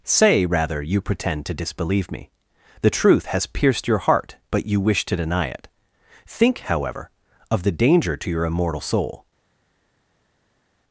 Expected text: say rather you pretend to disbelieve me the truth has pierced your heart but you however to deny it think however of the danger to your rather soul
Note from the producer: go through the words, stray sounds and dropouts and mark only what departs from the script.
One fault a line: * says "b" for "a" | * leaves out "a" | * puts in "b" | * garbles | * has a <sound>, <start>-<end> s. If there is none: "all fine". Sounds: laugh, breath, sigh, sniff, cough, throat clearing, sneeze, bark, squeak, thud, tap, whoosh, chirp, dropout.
* says "wish" for "however"
* says "immortal" for "rather"